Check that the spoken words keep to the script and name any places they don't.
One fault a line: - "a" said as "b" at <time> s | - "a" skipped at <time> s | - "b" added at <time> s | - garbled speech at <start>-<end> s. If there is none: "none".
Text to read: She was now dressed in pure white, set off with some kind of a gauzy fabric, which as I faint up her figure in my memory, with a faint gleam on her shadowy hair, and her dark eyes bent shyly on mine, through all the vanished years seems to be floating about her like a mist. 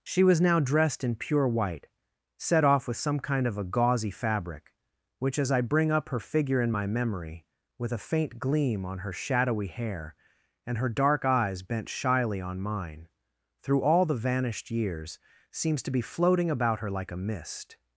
- "faint" said as "bring" at 5.6 s